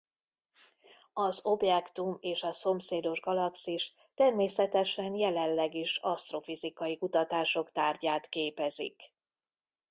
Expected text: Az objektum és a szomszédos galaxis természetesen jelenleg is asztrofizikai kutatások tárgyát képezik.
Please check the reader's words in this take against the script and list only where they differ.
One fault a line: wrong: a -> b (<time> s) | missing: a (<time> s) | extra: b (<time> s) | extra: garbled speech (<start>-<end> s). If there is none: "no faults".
no faults